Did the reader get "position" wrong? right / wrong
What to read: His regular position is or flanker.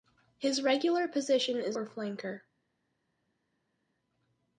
right